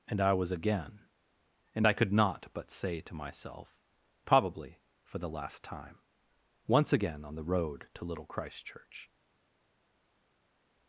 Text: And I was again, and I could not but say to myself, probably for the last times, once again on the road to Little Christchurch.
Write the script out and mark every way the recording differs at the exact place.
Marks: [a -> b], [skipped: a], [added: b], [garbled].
And I was again, and I could not but say to myself, probably for the last [times, -> time] once again on the road to Little Christchurch.